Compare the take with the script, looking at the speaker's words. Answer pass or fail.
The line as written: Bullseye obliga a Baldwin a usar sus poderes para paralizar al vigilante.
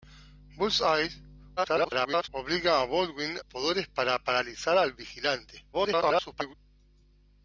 fail